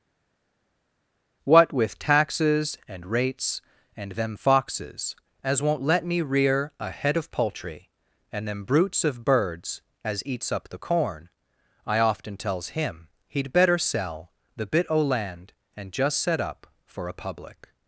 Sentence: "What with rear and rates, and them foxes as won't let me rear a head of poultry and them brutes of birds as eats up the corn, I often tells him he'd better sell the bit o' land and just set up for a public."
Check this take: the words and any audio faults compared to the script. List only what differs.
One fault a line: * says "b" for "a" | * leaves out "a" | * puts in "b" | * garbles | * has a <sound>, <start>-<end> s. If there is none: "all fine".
* says "taxes" for "rear"